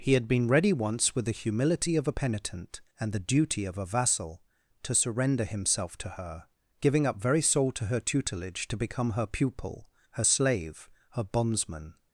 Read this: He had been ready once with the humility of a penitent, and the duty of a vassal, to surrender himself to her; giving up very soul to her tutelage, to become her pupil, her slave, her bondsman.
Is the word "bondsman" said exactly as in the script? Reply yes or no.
yes